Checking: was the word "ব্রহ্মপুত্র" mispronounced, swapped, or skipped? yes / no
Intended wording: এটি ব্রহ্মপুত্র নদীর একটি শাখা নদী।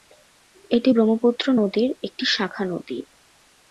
no